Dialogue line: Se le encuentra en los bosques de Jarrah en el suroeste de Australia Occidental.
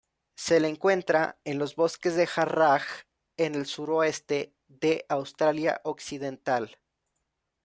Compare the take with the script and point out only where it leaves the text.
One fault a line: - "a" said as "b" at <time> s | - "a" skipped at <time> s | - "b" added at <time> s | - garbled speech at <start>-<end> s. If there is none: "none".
none